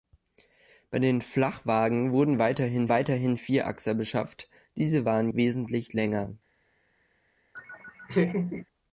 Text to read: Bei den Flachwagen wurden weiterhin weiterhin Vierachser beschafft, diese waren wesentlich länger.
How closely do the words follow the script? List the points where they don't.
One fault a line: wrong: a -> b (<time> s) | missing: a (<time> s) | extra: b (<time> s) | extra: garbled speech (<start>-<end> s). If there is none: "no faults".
no faults